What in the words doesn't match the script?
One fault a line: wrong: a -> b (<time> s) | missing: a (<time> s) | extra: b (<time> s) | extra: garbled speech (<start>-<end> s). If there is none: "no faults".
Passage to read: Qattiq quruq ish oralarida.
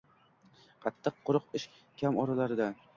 extra: kam (2.0 s)